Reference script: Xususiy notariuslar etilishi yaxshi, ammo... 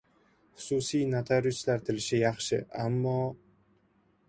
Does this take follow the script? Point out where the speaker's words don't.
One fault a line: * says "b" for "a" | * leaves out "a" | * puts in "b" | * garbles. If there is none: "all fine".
all fine